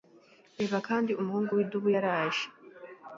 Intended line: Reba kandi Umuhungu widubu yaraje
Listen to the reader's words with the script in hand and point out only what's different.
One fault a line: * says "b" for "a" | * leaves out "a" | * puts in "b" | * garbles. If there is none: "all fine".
all fine